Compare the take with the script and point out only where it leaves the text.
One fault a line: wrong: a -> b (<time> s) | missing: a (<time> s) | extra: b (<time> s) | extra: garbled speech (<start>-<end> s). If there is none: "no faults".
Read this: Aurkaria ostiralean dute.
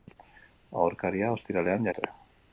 no faults